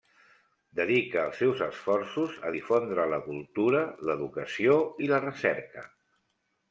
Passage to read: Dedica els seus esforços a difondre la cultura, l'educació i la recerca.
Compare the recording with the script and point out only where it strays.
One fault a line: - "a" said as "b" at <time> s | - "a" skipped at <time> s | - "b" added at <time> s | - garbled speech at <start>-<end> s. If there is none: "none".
none